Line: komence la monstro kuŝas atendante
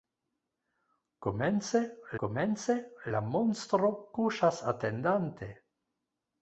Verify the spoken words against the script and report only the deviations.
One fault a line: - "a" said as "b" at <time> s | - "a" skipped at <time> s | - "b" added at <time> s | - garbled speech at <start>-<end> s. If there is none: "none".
- "komence" added at 2.2 s